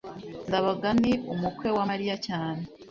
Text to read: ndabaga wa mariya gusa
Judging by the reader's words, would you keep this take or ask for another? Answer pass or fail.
fail